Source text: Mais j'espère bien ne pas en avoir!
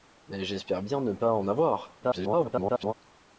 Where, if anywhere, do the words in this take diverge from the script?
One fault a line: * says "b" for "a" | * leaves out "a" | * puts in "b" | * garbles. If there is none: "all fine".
* garbles